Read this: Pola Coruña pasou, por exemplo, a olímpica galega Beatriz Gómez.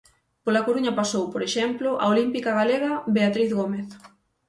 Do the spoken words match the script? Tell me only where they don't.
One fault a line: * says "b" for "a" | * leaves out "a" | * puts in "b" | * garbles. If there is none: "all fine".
all fine